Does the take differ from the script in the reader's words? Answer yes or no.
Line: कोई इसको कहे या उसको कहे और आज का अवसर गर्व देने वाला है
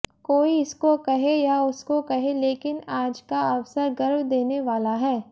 yes